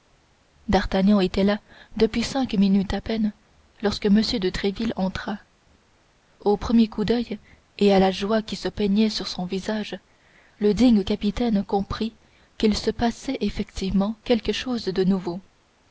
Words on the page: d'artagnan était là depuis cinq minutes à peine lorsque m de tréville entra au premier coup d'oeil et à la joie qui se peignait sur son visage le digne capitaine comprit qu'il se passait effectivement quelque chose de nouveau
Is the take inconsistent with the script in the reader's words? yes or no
no